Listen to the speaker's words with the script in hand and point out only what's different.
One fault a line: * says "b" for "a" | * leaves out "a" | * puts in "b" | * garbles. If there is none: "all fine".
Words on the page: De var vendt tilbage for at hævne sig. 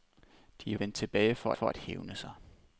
* leaves out "var"
* puts in "for"